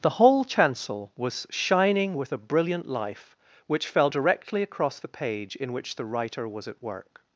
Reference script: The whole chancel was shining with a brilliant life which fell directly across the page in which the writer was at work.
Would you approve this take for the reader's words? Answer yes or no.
yes